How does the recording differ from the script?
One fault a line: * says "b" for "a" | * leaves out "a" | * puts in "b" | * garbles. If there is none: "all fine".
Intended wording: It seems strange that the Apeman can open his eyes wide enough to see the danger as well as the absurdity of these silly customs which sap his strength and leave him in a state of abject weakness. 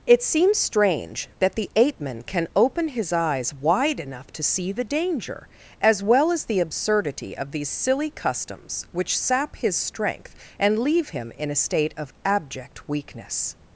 all fine